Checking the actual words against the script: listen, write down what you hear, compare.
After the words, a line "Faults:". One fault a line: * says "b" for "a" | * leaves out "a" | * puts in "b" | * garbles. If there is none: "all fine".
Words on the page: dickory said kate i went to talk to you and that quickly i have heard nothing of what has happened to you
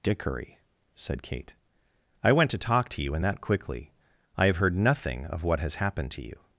dickory said kate i went to talk to you and that quickly i have heard nothing of what has happened to you
Faults:
all fine